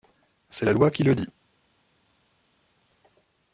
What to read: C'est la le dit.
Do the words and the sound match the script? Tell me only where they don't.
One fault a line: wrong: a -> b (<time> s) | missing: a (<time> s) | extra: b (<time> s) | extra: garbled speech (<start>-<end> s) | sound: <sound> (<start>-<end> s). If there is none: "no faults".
extra: loi qui (0.7 s)